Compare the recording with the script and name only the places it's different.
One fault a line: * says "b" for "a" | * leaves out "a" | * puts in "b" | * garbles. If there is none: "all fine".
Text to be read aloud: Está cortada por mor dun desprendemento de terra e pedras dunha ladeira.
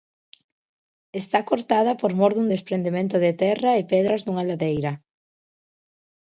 all fine